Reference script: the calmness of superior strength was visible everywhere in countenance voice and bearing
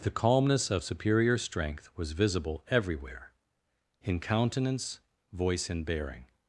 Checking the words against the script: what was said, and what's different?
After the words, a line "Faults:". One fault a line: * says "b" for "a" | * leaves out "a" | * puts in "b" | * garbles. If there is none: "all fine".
the calmness of superior strength was visible everywhere in countenance voice and bearing
Faults:
all fine